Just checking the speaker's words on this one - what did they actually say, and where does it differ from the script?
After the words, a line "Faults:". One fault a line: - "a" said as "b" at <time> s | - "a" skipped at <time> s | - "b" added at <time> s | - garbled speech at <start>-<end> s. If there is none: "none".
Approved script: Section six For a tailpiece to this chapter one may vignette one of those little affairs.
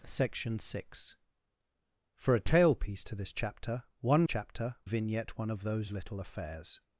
Section six For a tailpiece to this chapter one chapter vignette one of those little affairs.
Faults:
- "may" said as "chapter" at 4.2 s